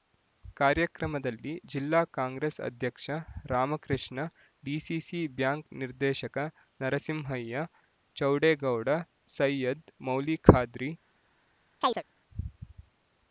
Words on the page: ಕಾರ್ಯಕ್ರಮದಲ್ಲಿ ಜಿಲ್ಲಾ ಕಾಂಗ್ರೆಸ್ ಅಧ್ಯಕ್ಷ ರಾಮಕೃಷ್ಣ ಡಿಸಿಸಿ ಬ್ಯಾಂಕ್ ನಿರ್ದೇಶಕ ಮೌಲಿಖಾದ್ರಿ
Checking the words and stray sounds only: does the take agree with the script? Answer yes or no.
no